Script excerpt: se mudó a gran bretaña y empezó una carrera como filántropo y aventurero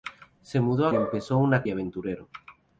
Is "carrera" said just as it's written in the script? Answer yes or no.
no